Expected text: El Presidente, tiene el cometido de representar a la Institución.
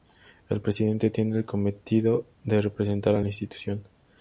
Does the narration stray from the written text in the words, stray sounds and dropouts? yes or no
no